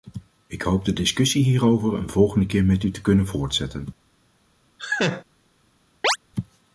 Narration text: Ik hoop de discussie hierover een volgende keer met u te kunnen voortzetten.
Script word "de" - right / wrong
right